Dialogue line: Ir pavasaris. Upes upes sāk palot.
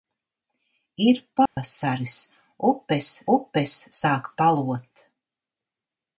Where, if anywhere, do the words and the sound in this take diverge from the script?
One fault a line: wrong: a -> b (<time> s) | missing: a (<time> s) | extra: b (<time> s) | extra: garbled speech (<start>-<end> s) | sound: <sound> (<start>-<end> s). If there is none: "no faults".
sound: dropout (1.5-1.6 s)